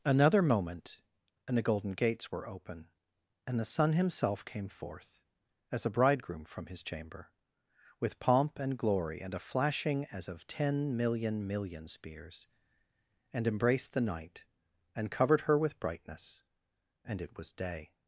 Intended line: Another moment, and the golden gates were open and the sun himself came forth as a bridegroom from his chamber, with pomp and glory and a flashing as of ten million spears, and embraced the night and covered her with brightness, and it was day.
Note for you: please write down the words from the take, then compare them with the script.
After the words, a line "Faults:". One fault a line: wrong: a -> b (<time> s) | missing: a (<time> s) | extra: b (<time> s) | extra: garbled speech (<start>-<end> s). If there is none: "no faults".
Another moment, and the golden gates were open and the sun himself came forth as a bridegroom from his chamber, with pomp and glory and a flashing as of ten million million spears, and embraced the night and covered her with brightness, and it was day.
Faults:
extra: million (11.5 s)